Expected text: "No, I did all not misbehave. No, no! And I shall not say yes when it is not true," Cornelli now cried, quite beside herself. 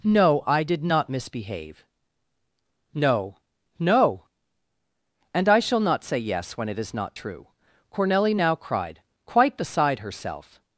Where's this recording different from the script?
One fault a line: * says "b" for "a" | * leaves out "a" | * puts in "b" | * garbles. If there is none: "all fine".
* leaves out "all"